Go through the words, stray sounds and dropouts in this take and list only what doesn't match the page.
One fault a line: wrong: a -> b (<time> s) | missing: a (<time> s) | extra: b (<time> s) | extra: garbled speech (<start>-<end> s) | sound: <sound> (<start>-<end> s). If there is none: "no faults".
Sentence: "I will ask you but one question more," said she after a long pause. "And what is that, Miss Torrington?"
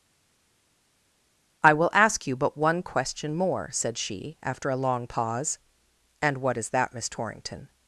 no faults